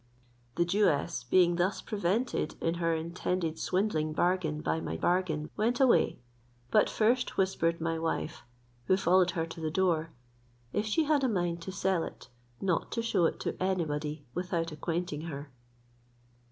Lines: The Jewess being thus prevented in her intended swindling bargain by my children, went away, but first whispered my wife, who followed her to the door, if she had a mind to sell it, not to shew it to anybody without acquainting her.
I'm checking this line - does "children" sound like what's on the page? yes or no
no